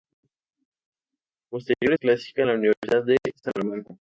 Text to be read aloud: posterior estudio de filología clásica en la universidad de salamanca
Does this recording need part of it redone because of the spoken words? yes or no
yes